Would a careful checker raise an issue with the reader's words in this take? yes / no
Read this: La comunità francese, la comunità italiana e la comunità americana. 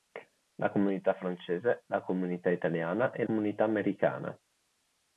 yes